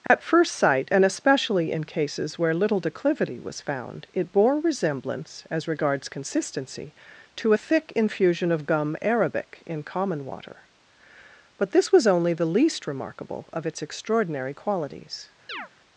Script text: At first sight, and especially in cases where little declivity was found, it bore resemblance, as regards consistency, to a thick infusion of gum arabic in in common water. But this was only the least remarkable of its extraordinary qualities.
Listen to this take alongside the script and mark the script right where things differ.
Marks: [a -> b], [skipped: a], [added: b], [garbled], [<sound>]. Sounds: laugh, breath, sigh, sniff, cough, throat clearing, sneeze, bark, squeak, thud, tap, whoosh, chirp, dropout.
At [dropout] first sight, and especially in cases where little declivity was found, it bore resemblance, as regards consistency, to a thick infusion of gum arabic in [skipped: in] common water. But this was only the least remarkable of its extraordinary qualities. [chirp]